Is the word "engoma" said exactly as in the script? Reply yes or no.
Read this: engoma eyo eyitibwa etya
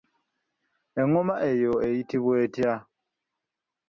yes